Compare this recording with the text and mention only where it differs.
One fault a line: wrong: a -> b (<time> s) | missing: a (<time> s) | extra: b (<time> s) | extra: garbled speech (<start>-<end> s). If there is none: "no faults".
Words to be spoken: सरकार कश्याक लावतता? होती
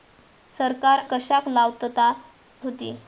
no faults